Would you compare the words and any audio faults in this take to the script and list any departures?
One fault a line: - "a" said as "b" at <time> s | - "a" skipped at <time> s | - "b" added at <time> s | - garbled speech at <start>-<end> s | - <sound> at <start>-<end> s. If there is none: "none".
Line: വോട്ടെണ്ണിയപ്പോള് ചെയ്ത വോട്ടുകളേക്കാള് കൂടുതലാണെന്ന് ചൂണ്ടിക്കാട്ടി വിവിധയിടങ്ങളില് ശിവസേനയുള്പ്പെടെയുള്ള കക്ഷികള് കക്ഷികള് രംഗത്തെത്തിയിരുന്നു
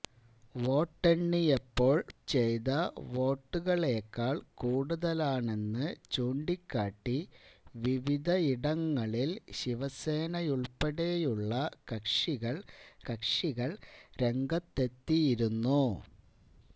none